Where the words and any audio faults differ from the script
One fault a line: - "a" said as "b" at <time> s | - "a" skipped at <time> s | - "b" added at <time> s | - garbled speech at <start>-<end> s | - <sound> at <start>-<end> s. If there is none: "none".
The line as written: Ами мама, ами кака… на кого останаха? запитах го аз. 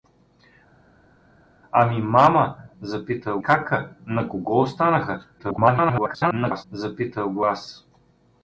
- "ами" said as "запитах" at 2.8 s
- garbled speech at 5.4-6.6 s